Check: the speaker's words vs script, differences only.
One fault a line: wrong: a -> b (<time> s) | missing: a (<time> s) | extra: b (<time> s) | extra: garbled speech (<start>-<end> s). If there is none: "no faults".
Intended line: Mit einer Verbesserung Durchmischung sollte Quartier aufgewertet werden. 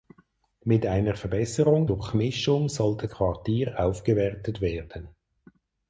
no faults